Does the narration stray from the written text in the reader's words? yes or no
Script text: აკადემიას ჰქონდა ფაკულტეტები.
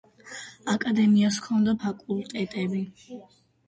no